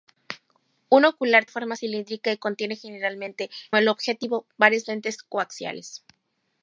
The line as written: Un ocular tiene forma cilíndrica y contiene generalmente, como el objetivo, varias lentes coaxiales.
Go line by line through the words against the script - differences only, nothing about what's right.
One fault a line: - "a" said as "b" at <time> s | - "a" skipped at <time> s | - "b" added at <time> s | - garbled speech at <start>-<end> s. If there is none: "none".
- "tiene" skipped at 1.4 s
- "como" skipped at 3.5 s